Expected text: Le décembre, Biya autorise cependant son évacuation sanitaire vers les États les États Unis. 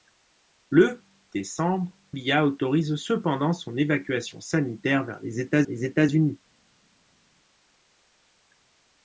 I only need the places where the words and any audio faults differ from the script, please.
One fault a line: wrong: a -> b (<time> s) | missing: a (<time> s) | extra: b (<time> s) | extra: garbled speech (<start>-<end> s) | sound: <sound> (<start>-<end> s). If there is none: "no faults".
no faults